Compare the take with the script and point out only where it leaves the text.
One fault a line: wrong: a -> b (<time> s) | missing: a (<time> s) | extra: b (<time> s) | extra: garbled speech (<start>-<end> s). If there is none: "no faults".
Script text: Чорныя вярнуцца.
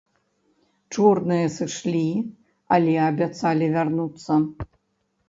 extra: сышлі але абяцалі (1.6 s)